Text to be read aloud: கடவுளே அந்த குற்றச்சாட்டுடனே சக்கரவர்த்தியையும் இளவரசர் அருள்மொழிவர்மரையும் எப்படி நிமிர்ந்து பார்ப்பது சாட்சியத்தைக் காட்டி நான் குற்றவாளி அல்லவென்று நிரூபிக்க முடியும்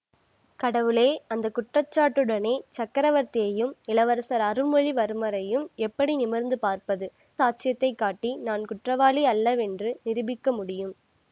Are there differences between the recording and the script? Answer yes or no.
no